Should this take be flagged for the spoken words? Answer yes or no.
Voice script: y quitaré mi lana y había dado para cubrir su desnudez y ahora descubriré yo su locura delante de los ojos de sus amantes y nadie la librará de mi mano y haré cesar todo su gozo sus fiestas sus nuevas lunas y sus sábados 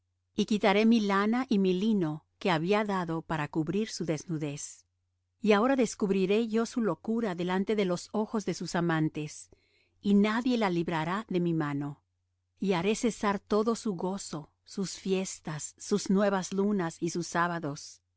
yes